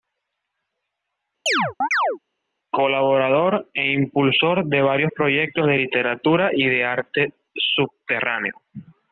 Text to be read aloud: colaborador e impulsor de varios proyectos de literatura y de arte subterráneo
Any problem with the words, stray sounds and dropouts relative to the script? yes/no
yes